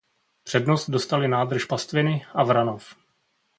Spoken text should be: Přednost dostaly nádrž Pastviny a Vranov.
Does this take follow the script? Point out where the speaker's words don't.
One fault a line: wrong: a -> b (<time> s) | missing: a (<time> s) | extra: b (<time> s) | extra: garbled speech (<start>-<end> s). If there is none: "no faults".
no faults